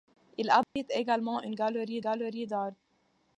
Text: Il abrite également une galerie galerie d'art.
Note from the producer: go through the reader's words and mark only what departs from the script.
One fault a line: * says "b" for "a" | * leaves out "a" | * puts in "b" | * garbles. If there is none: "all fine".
all fine